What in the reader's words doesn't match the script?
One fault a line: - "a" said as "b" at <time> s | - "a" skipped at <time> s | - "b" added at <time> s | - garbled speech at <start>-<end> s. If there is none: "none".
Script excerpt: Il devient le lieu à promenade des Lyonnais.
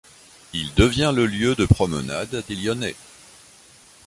- "à" said as "de" at 1.5 s